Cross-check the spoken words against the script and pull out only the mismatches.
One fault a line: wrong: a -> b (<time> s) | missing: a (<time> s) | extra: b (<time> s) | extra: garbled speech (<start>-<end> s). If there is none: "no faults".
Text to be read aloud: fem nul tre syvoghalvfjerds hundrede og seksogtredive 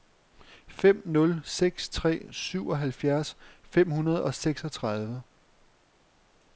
extra: seks (1.4 s)
extra: fem (3.6 s)